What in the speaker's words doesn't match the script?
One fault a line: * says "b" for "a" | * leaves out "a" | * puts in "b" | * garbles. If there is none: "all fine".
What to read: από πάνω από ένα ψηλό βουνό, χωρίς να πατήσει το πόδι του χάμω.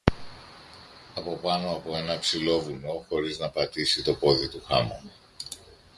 all fine